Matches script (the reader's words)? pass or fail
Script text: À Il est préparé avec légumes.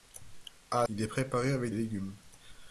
pass